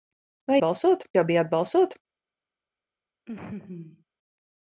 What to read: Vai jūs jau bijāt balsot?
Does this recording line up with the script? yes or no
no